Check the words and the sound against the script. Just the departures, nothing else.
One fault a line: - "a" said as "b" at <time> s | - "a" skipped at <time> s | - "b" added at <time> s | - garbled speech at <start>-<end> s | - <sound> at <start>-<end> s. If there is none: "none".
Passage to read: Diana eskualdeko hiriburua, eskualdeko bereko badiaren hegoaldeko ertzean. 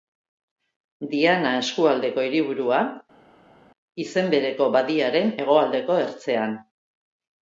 - "eskualdeko" said as "izen" at 4.0 s